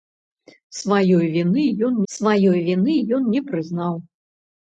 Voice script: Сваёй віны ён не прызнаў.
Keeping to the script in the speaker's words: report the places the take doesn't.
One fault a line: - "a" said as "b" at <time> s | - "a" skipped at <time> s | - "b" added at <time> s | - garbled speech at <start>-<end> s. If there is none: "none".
- "сваёй віны ён" added at 2.1 s